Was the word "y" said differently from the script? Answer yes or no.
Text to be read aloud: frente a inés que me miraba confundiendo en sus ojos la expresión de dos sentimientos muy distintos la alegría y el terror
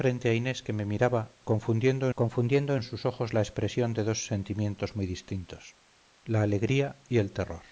no